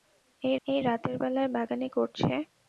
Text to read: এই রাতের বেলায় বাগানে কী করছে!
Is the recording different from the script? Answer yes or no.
yes